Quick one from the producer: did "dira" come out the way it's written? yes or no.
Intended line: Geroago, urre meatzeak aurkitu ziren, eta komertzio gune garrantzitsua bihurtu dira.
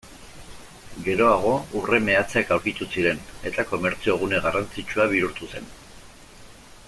no